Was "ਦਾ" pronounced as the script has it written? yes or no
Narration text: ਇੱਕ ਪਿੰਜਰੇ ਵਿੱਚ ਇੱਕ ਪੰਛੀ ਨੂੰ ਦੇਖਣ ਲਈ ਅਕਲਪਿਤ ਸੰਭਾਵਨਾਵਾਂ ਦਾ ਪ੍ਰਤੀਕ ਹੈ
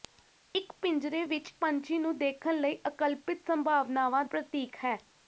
no